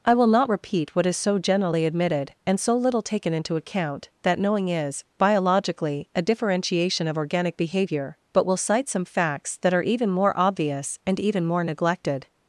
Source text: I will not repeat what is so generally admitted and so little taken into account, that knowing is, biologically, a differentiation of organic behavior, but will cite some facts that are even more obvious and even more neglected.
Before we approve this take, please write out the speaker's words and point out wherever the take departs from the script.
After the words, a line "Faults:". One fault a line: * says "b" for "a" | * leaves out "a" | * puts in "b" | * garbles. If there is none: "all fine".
I will not repeat what is so generally admitted and so little taken into account, that knowing is, biologically, a differentiation of organic behavior, but will cite some facts that are even more obvious and even more neglected.
Faults:
all fine